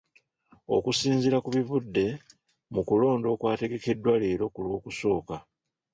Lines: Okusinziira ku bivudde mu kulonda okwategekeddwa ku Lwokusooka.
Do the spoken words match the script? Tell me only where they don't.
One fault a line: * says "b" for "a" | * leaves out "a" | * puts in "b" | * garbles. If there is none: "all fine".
* puts in "leero"